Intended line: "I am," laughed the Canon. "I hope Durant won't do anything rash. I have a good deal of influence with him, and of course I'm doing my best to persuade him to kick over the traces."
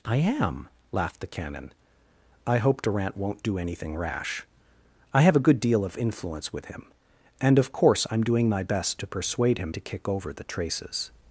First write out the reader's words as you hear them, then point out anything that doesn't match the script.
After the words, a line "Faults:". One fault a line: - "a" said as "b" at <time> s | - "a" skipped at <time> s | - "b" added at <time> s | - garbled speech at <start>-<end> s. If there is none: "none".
"I am," laughed the Canon. "I hope Durant won't do anything rash. I have a good deal of influence with him, and of course I'm doing my best to persuade him to kick over the traces."
Faults:
none